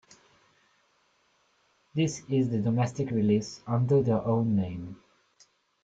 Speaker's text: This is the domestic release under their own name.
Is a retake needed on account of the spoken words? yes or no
no